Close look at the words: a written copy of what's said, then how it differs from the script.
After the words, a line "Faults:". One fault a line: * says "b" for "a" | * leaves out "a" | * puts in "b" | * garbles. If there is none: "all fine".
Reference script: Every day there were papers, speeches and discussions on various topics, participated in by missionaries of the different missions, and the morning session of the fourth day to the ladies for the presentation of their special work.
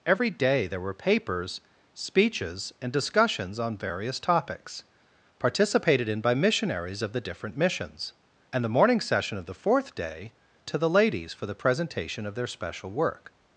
Every day there were papers, speeches and discussions on various topics, participated in by missionaries of the different missions, and the morning session of the fourth day to the ladies for the presentation of their special work.
Faults:
all fine